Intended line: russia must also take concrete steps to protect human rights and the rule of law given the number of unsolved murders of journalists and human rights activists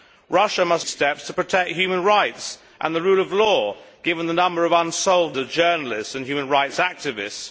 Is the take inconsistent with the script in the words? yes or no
yes